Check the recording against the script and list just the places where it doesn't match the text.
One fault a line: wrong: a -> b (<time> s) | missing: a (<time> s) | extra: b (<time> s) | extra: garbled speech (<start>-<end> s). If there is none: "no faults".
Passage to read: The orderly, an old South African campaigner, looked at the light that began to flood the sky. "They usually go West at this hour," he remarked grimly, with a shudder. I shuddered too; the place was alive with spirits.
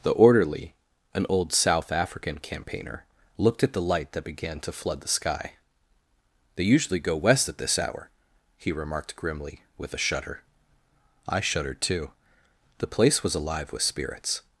no faults